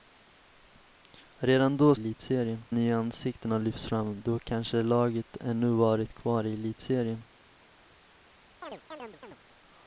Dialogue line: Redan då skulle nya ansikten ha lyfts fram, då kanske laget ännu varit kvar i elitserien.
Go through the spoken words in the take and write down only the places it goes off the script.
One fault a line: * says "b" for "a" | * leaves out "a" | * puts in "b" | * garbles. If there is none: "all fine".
* says "elitserien" for "skulle"